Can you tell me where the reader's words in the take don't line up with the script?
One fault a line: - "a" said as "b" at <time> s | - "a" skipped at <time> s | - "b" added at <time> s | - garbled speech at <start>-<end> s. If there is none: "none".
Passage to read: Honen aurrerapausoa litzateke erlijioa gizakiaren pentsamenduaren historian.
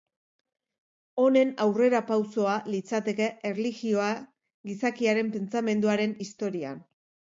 none